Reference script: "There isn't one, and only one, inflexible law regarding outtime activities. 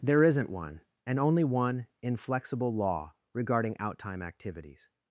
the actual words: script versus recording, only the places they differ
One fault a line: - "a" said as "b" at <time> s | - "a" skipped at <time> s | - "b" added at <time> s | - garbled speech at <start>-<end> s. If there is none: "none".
none